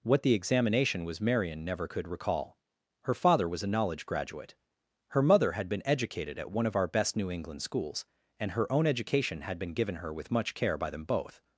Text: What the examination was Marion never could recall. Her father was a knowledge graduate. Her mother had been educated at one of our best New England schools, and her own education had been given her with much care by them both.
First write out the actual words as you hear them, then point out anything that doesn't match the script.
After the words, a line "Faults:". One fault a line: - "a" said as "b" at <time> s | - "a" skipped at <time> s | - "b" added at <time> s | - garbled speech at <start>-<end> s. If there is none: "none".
What the examination was Marion never could recall. Her father was a knowledge graduate. Her mother had been educated at one of our best New England schools, and her own education had been given her with much care by them both.
Faults:
none